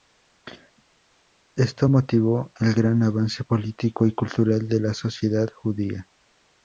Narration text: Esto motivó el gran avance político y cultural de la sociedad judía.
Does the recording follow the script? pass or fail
pass